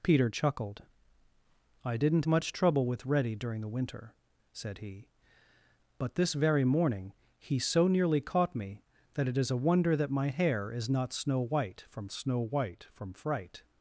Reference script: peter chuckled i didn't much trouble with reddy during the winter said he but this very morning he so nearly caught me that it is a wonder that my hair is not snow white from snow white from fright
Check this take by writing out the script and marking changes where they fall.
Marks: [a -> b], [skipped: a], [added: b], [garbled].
peter chuckled i didn't much trouble with reddy during the winter said he but this very morning he so nearly caught me that it is a wonder that my hair is not snow white from snow white from fright